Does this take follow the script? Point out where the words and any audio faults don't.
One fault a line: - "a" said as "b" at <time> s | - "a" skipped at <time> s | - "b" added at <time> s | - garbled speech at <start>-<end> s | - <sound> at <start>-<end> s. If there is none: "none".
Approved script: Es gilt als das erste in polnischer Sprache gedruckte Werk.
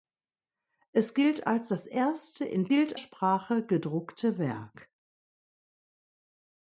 - "polnischer" said as "gilt" at 2.7 s